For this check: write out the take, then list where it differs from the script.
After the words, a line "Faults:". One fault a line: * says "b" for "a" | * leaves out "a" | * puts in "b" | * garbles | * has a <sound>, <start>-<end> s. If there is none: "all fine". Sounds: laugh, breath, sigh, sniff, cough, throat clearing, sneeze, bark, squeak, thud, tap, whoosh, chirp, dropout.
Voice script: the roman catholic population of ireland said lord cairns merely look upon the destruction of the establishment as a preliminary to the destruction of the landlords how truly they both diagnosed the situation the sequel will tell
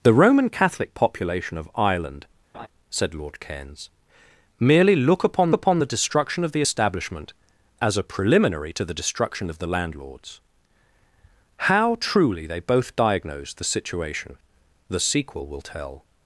the roman catholic population of ireland said lord cairns merely look upon upon the destruction of the establishment as a preliminary to the destruction of the landlords how truly they both diagnosed the situation the sequel will tell
Faults:
* has a laugh, 2.5-2.7 s
* puts in "upon"